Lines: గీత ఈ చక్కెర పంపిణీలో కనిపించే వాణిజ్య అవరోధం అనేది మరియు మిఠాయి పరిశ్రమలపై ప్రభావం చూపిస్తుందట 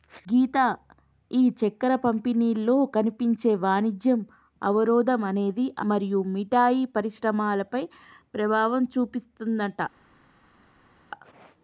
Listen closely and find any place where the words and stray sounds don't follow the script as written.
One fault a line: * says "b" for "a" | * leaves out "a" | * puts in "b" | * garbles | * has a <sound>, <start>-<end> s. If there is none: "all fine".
all fine